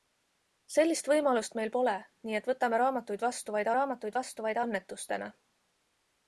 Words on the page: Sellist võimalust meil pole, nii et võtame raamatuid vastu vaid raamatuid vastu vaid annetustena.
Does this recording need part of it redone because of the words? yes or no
no